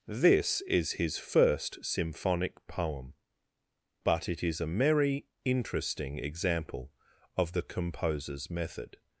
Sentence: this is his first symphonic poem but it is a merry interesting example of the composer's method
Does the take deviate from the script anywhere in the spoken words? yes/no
no